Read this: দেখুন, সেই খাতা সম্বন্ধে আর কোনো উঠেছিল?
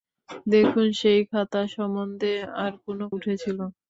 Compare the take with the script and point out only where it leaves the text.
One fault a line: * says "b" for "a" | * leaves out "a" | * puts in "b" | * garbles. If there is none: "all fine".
all fine